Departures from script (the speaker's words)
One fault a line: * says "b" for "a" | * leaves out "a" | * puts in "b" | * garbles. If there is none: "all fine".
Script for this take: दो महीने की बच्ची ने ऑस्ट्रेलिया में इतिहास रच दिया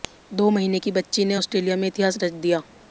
all fine